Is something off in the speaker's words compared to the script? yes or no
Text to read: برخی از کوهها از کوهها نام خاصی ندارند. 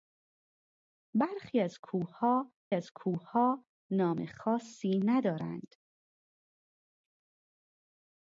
no